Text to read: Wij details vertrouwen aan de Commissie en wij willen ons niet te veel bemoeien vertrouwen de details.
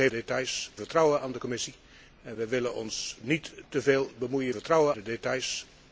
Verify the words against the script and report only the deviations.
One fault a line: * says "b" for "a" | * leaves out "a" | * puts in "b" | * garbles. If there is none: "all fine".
all fine